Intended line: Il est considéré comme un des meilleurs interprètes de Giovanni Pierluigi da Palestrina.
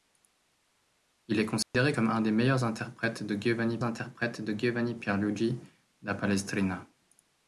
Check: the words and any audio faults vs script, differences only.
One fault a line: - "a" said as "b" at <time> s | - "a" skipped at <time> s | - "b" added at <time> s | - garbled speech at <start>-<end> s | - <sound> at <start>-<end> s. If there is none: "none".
- dropout at 1.6-1.7 s
- "interprètes de Giovanni" added at 3.8 s